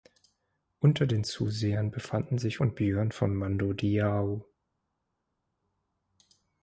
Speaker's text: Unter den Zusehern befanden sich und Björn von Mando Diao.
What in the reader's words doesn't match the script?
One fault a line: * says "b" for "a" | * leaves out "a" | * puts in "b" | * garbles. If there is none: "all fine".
all fine